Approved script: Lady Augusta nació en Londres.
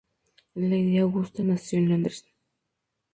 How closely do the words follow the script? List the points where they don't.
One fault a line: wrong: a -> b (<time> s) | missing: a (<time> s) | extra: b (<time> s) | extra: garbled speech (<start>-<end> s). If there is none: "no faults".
no faults